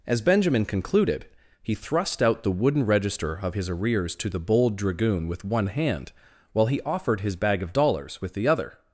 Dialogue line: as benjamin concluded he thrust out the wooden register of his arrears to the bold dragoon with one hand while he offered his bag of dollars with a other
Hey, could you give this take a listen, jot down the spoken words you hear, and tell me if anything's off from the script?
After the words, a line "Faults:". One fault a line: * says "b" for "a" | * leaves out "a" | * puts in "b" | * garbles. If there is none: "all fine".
as benjamin concluded he thrust out the wooden register of his arrears to the bold dragoon with one hand while he offered his bag of dollars with the other
Faults:
* says "the" for "a"